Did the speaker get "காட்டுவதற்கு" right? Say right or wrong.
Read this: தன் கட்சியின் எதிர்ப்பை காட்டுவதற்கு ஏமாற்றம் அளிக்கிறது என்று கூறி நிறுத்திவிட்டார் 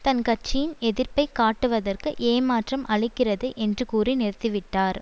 right